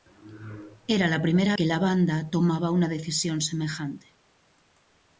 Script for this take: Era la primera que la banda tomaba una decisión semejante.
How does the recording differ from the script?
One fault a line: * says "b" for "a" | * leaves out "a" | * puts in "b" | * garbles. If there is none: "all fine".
all fine